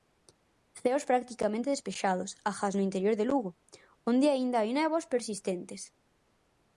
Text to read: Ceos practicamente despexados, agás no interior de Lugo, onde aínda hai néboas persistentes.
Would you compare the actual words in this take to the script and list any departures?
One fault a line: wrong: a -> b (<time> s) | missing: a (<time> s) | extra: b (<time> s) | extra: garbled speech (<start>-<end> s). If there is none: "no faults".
no faults